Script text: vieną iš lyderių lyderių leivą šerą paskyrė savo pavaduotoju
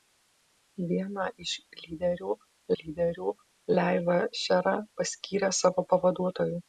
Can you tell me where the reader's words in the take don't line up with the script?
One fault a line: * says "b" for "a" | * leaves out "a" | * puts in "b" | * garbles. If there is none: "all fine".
all fine